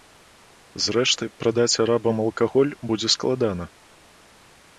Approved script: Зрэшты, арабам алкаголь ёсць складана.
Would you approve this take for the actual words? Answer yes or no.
no